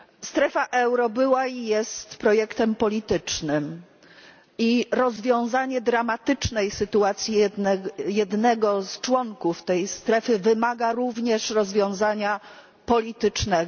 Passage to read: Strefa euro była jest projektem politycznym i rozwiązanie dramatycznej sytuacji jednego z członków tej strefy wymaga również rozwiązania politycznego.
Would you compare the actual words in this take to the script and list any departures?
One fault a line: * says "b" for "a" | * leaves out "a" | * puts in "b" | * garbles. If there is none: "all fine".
* puts in "i"